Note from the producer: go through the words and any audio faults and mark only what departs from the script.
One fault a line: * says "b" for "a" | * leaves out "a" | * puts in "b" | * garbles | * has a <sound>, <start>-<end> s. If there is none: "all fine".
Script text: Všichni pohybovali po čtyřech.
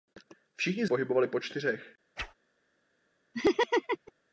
* has a whoosh, 2.2-2.3 s
* has a laugh, 3.3-4.1 s